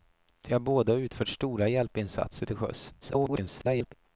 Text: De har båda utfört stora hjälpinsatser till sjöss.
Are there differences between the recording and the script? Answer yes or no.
yes